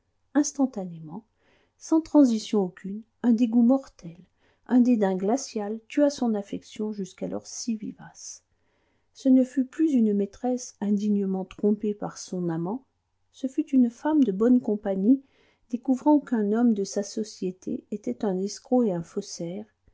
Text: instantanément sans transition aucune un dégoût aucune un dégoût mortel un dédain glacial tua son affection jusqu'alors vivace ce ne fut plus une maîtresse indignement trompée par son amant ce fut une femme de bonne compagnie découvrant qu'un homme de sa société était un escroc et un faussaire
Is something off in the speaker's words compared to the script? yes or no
yes